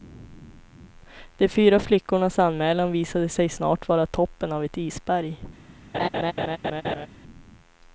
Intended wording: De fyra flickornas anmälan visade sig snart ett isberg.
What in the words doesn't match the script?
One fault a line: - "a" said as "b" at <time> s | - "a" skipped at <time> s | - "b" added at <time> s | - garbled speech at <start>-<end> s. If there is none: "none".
- "vara toppen av" added at 3.9 s